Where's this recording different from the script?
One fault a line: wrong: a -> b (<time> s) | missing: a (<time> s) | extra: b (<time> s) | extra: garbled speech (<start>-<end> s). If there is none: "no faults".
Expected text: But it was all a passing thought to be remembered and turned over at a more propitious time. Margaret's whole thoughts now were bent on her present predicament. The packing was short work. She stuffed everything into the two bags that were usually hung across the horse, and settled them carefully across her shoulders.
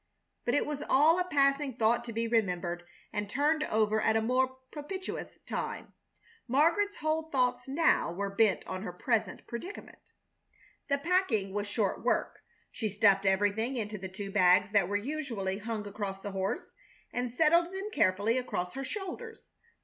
no faults